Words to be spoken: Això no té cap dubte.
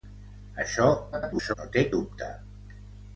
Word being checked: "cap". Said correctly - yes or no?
no